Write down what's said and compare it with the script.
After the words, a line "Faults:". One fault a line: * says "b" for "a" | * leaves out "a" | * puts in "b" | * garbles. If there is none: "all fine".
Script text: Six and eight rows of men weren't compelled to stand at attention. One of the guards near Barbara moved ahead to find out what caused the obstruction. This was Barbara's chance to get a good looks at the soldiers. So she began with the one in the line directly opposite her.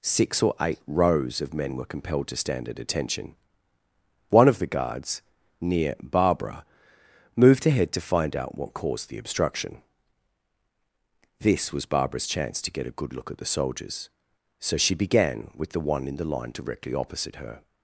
Six or eight rows of men were compelled to stand at attention. One of the guards near Barbara moved ahead to find out what caused the obstruction. This was Barbara's chance to get a good look at the soldiers. So she began with the one in the line directly opposite her.
Faults:
* says "or" for "and"
* says "were" for "weren't"
* says "look" for "looks"